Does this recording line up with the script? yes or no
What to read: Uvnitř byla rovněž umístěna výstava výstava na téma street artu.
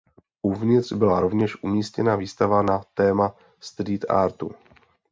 no